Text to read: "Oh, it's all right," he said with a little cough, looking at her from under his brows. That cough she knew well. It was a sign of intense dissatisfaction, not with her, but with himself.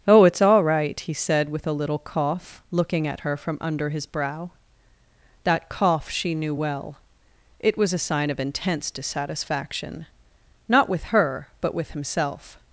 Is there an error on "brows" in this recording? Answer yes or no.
yes